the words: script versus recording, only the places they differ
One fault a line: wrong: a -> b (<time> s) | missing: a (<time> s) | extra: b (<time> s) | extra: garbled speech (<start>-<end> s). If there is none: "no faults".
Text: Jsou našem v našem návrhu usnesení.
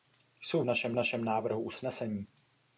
no faults